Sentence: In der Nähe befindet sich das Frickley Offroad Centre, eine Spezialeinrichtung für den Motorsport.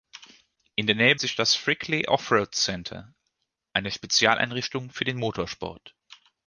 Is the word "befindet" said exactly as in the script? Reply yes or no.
no